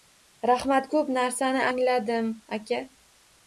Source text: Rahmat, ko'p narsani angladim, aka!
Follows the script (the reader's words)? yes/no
yes